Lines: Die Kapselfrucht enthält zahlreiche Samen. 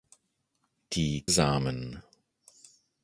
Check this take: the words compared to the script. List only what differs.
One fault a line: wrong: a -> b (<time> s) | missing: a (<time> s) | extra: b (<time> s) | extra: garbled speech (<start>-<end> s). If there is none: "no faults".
missing: Kapselfrucht enthält zahlreiche (1.3 s)